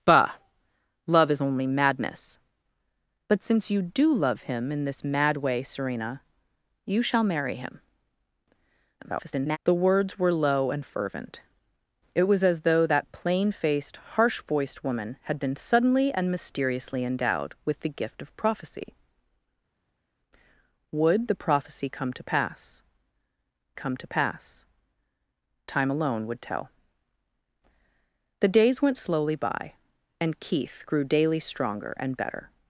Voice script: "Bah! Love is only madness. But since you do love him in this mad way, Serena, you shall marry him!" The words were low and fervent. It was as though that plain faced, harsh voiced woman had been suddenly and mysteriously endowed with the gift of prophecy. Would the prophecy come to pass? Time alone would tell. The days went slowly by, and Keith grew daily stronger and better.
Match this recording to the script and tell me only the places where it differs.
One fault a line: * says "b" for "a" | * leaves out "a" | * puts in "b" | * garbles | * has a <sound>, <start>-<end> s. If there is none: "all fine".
* garbles
* puts in "come to pass"